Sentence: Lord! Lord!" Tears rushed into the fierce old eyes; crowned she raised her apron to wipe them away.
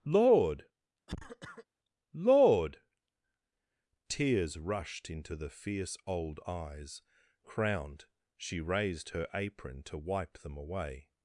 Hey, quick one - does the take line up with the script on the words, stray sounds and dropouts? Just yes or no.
no